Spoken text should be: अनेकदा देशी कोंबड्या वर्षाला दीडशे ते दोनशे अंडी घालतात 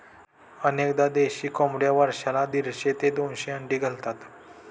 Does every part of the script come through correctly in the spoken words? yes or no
yes